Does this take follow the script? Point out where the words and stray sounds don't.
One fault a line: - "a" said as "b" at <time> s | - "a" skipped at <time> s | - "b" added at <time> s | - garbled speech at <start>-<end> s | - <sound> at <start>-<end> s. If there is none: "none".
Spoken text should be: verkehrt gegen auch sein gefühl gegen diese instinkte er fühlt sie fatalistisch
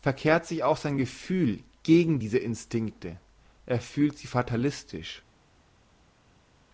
- "gegen" said as "sich" at 0.5 s